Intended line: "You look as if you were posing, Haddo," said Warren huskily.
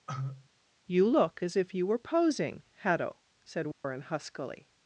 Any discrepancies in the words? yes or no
no